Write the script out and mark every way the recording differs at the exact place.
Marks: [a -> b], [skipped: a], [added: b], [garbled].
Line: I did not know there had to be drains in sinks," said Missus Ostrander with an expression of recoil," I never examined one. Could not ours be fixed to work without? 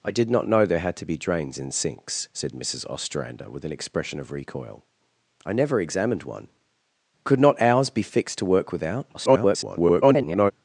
I did not know there had to be drains in sinks," said Missus Ostrander with an expression of recoil," I never examined one. Could not ours be fixed to work without? [garbled]